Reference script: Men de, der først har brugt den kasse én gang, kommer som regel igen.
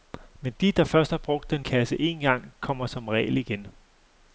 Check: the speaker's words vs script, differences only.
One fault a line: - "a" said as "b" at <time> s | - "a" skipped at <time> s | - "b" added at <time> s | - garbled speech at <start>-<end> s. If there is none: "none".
none